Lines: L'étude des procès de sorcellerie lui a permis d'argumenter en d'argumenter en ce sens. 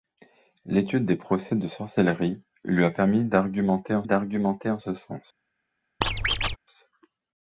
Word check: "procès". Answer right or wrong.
right